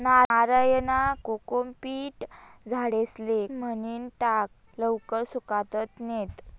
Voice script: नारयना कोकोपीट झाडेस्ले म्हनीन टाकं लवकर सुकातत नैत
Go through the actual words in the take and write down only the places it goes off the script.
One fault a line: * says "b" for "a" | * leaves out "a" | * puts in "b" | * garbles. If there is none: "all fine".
all fine